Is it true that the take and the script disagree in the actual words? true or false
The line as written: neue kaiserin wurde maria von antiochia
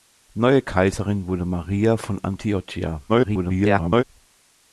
true